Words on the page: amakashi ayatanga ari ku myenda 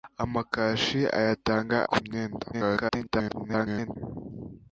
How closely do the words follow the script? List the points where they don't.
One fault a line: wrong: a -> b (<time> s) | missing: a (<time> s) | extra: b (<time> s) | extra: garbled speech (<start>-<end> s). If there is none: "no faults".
missing: ari (1.8 s)
extra: garbled speech (2.5-4.0 s)